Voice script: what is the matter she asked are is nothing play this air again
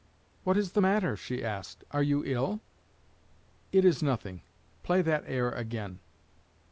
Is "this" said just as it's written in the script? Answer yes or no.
no